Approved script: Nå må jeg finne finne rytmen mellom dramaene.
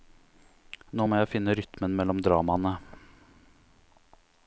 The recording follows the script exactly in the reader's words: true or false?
false